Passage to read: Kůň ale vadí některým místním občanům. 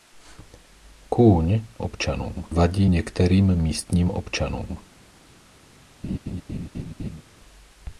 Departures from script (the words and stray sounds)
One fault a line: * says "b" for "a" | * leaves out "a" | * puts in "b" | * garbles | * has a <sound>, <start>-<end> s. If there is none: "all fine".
* says "občanům" for "ale"
* has a laugh, 6.0-7.2 s